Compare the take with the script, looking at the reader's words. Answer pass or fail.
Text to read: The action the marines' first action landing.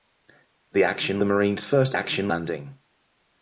pass